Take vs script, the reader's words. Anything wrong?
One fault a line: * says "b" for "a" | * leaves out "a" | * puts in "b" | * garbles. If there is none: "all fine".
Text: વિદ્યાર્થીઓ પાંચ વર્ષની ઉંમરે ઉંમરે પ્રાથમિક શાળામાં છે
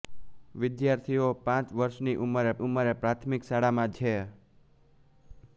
all fine